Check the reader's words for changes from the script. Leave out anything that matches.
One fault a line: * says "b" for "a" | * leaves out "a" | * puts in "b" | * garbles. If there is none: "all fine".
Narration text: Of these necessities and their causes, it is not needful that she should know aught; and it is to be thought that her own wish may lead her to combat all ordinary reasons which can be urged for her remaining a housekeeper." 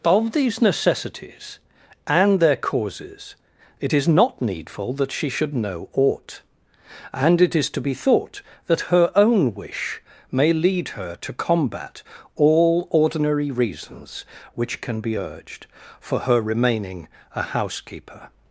all fine